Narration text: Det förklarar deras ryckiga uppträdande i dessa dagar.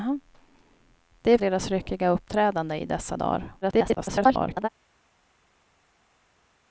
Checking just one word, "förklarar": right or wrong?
wrong